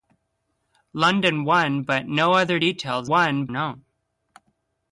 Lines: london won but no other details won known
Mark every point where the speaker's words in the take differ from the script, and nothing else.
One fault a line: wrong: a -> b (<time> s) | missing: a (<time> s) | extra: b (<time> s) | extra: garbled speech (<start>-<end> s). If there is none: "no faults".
no faults